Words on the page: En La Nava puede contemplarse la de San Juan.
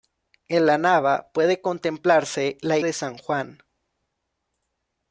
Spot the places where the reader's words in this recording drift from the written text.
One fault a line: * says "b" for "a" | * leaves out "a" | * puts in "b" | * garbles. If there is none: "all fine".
all fine